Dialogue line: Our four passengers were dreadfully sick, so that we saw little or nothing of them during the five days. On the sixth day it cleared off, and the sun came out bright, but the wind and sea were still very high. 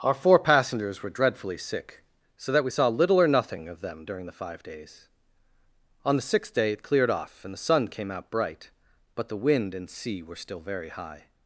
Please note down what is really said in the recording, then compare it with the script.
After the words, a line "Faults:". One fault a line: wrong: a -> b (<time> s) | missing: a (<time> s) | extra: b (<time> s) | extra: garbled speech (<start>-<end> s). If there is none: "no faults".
Our four passengers were dreadfully sick, so that we saw little or nothing of them during the five days. On the sixth day it cleared off, and the sun came out bright, but the wind and sea were still very high.
Faults:
no faults